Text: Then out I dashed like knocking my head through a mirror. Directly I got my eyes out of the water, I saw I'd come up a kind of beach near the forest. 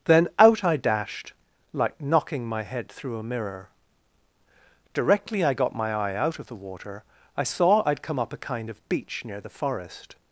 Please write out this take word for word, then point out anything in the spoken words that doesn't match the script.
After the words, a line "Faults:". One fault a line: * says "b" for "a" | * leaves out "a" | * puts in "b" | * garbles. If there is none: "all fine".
Then out I dashed like knocking my head through a mirror. Directly I got my eye out of the water, I saw I'd come up a kind of beach near the forest.
Faults:
* says "eye" for "eyes"